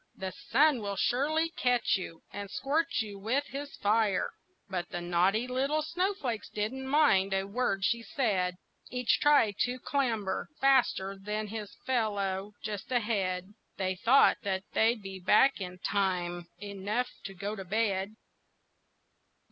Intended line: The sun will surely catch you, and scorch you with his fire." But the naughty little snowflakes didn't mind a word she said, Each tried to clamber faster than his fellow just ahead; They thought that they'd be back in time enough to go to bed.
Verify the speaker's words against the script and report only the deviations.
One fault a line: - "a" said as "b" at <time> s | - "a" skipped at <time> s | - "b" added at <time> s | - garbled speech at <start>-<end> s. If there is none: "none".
none